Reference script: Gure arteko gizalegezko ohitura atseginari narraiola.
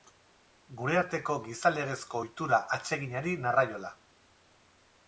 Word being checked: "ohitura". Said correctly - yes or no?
yes